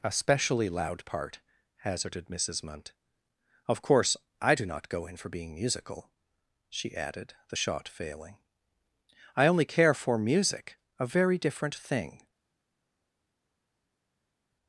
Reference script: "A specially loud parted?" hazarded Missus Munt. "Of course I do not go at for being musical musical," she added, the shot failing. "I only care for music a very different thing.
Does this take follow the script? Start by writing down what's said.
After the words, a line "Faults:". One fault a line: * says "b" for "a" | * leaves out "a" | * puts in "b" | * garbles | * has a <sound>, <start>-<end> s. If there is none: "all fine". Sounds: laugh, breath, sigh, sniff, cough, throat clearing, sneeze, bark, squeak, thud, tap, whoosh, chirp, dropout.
"A specially loud part?" hazarded Missus Munt. "Of course I do not go in for being musical," she added, the shot failing. "I only care for music a very different thing.
Faults:
* says "part" for "parted"
* says "in" for "at"
* leaves out "musical"